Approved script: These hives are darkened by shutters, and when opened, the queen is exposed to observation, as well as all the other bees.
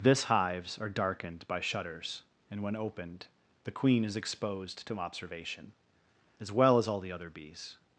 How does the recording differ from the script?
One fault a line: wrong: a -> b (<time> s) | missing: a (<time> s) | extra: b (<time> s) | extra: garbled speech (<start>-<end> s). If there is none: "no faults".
wrong: These -> This (0.0 s)